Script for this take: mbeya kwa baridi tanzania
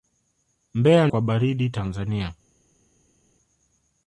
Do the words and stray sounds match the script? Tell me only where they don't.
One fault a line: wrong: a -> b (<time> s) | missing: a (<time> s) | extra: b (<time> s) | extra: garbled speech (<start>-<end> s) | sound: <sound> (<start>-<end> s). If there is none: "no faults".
no faults